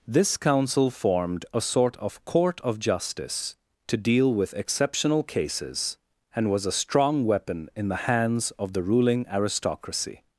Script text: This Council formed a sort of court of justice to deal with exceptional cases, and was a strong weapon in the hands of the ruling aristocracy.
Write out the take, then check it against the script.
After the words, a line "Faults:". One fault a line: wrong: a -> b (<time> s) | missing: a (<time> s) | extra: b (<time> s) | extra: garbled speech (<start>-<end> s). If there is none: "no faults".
This Council formed a sort of court of justice to deal with exceptional cases, and was a strong weapon in the hands of the ruling aristocracy.
Faults:
no faults